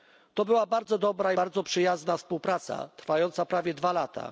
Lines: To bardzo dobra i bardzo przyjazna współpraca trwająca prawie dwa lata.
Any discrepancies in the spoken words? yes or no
yes